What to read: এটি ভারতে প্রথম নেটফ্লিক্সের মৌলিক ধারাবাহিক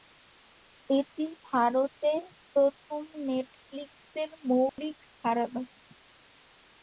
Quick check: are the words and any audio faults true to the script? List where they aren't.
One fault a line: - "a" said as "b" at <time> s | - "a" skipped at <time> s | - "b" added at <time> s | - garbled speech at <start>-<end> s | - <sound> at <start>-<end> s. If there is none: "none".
- dropout at 4.7-4.8 s